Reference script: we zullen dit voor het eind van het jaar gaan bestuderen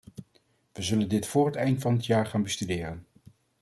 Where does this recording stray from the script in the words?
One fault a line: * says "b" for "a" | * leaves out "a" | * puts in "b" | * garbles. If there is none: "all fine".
all fine